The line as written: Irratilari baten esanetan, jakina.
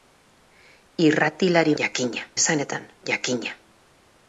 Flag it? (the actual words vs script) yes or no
yes